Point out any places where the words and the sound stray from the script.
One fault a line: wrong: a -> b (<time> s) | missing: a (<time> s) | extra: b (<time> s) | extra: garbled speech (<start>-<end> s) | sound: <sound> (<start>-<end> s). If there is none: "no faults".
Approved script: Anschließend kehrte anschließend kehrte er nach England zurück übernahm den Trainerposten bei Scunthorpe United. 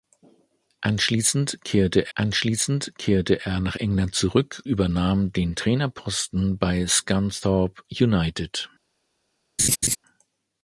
sound: laugh (9.6-10.0 s)